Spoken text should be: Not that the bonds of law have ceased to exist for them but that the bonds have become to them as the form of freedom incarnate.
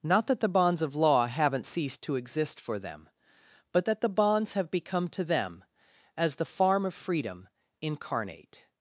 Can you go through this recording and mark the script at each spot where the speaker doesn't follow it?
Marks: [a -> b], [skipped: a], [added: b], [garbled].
Not that the bonds of law [have -> haven't] ceased to exist for them but that the bonds have become to them as the [form -> farm] of freedom incarnate.